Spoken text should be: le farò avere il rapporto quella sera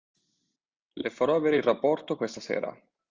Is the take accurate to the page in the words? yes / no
no